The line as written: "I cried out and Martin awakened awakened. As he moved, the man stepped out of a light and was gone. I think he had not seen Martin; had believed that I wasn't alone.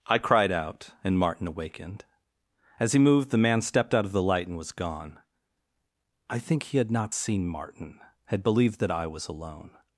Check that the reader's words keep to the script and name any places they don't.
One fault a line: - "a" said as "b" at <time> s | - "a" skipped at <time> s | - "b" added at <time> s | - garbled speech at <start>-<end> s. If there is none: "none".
- "awakened" skipped at 2.0 s
- "a" said as "the" at 4.1 s
- "wasn't" said as "was" at 9.1 s